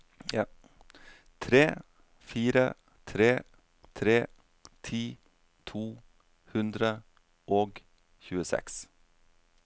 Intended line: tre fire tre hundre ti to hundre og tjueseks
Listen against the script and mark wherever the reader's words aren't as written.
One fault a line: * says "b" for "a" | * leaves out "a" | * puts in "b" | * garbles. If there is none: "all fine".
* says "tre" for "hundre"